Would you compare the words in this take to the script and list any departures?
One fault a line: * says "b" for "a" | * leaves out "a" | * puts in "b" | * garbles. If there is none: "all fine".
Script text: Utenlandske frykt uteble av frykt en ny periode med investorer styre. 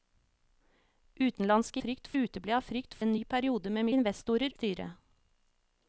all fine